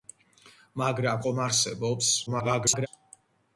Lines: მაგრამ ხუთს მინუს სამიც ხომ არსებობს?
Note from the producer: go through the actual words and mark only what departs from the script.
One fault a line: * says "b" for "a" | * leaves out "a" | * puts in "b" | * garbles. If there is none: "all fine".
* leaves out "ხუთს მინუს სამიც"
* garbles